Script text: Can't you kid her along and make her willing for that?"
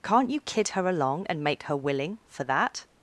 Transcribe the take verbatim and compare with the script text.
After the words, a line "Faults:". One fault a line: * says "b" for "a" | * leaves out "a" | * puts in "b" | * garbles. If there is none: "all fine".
Can't you kid her along and make her willing for that?"
Faults:
all fine